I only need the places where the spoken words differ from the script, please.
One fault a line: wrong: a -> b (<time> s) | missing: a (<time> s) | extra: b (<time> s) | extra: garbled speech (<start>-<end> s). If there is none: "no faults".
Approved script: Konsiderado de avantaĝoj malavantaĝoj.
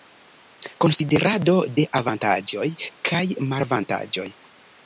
extra: kaj (3.1 s)